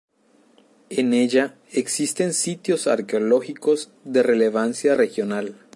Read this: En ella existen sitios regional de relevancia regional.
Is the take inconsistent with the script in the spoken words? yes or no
yes